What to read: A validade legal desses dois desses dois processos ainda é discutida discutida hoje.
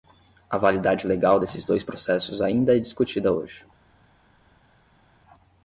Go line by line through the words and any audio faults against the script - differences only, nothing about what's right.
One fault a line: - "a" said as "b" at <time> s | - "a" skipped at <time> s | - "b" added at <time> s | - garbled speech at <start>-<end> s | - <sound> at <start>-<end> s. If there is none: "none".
- "desses dois" skipped at 1.8 s
- "discutida" skipped at 3.3 s